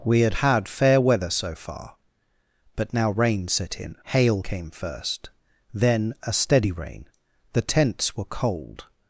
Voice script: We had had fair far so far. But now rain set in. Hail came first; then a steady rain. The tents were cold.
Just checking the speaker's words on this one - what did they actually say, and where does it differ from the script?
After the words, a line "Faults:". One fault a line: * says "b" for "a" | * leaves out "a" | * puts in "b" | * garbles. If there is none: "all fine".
We had had fair weather so far. But now rain set in. Hail came first; then a steady rain. The tents were cold.
Faults:
* says "weather" for "far"